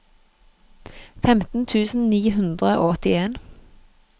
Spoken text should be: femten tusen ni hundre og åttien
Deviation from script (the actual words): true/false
false